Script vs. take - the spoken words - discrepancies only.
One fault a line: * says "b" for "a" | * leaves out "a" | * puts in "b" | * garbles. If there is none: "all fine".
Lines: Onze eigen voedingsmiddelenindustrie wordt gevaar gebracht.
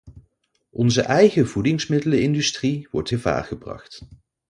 all fine